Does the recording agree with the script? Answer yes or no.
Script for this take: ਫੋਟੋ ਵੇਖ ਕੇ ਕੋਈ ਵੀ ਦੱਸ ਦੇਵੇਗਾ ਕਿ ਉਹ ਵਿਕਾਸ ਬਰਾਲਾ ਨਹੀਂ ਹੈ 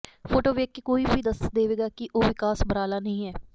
yes